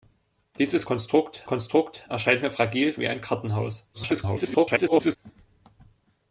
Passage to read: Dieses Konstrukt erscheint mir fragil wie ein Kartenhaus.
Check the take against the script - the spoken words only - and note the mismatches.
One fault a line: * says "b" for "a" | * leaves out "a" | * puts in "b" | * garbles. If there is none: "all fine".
* puts in "Konstrukt"
* garbles